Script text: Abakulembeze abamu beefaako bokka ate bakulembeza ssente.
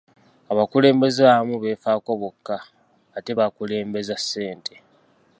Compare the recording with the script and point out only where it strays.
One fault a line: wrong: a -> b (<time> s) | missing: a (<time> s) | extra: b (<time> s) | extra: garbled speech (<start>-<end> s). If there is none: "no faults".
no faults